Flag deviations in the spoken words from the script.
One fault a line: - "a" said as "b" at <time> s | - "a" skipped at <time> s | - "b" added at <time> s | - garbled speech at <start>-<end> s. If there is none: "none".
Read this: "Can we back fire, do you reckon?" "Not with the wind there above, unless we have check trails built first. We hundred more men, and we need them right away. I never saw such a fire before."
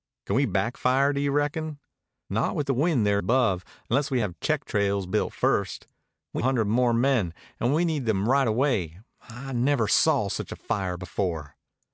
none